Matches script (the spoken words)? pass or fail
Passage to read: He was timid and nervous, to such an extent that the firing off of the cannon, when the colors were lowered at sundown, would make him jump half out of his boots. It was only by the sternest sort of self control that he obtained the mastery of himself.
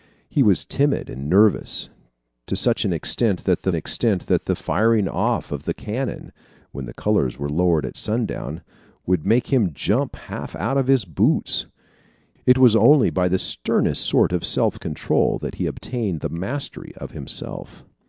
fail